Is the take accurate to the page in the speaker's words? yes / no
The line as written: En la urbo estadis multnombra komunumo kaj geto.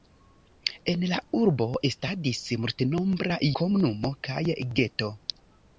yes